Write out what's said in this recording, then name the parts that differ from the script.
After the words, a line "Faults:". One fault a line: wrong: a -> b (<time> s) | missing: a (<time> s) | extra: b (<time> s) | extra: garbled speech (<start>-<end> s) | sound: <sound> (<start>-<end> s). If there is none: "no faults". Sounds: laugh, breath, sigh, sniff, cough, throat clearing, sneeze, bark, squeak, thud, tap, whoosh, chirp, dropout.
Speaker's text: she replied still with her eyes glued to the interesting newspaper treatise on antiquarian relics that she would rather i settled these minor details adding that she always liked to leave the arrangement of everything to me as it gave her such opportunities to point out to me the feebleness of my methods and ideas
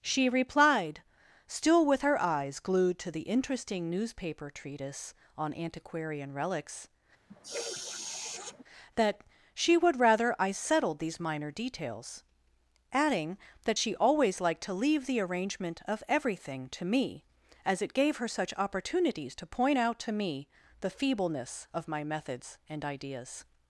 she replied still with her eyes glued to the interesting newspaper treatise on antiquarian relics that she would rather i settled these minor details adding that she always liked to leave the arrangement of everything to me as it gave her such opportunities to point out to me the feebleness of my methods and ideas
Faults:
sound: sniff (7.3-8.6 s)